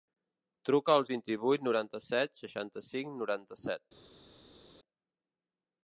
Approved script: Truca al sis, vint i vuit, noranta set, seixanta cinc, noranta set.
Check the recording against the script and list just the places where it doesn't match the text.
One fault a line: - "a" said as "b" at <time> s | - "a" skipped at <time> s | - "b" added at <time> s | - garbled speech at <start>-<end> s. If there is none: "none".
- "sis" skipped at 1.0 s